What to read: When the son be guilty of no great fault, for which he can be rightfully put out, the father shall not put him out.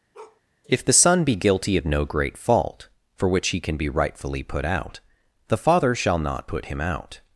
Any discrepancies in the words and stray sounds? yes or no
yes